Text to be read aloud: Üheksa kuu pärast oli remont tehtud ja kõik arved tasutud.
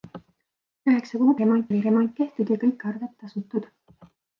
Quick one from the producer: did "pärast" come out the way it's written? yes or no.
no